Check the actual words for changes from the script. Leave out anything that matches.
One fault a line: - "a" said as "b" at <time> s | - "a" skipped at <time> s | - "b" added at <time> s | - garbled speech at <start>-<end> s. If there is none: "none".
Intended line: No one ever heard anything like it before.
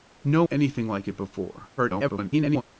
- "one ever heard" skipped at 0.4 s
- garbled speech at 1.8-2.6 s